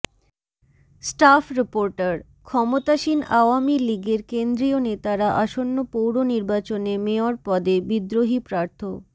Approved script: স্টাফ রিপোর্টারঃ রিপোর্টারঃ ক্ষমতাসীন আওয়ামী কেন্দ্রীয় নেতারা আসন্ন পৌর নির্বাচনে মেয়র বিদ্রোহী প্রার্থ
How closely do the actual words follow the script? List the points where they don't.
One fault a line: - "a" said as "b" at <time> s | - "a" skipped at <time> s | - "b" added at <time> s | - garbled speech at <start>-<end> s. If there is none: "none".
- "রিপোর্টারঃ" skipped at 2.2 s
- "লীগের" added at 3.9 s
- "পদে" added at 7.4 s